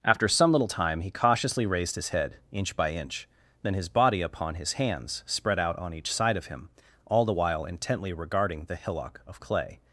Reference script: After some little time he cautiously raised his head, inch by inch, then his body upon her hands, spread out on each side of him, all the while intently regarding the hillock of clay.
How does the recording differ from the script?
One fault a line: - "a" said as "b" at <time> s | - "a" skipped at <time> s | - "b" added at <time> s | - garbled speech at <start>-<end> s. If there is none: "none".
- "her" said as "his" at 4.6 s